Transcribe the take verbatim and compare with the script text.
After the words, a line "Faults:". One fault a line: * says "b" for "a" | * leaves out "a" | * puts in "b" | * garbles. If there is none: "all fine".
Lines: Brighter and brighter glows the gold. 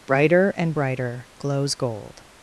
Brighter and brighter glows gold.
Faults:
* leaves out "the"